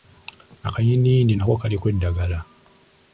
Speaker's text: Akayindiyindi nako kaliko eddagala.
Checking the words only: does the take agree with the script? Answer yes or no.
yes